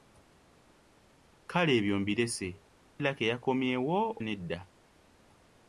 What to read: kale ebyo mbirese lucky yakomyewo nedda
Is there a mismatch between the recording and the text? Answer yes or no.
no